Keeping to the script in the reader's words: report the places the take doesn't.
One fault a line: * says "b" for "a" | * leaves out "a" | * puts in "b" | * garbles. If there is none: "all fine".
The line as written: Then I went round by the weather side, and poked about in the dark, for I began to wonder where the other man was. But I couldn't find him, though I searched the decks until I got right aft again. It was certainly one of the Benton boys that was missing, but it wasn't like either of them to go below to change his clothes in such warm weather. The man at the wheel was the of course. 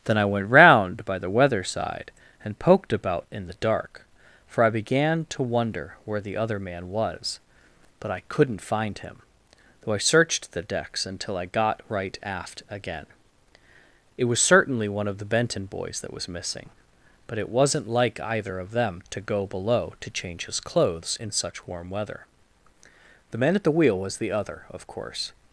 * puts in "other"